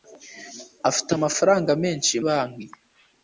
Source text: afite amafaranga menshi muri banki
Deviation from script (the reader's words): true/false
true